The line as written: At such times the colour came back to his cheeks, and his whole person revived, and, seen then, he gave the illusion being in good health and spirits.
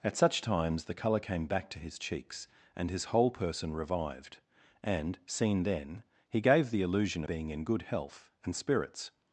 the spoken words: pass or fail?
pass